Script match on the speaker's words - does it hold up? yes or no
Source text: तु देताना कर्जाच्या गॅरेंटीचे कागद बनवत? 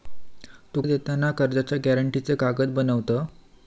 yes